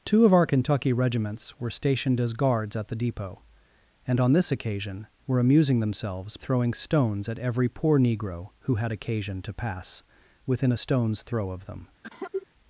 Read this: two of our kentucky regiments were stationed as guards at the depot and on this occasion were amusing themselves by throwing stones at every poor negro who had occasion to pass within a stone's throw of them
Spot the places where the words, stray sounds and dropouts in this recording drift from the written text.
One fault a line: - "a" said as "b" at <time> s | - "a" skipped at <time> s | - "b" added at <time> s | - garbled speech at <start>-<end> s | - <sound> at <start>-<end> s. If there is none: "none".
- "by" skipped at 6.4 s
- cough at 12.0-12.5 s